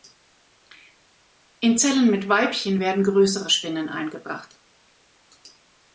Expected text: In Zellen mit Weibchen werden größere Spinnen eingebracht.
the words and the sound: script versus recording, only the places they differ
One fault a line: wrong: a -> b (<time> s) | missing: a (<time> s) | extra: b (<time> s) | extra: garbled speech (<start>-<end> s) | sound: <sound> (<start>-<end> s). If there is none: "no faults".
no faults